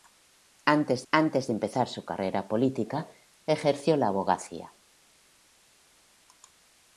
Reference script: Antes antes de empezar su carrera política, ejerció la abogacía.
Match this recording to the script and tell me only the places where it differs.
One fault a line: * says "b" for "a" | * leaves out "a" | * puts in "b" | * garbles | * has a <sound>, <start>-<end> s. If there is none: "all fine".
all fine